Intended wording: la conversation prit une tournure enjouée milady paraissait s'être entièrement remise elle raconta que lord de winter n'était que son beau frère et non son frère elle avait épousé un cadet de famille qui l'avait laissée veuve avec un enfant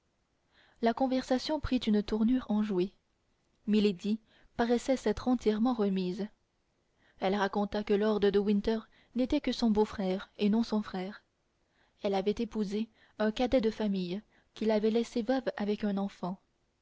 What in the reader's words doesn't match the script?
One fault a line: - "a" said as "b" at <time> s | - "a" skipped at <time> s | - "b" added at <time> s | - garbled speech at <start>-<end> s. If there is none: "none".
none